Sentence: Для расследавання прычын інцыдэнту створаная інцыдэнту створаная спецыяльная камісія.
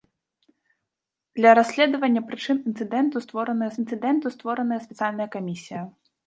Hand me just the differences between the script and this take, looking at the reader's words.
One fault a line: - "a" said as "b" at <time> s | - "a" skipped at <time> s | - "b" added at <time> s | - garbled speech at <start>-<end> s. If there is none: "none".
none